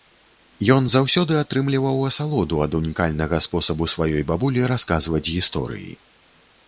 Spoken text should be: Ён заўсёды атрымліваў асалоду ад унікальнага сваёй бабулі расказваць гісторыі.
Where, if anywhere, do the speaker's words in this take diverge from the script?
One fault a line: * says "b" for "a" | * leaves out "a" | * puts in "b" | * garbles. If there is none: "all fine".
* puts in "спосабу"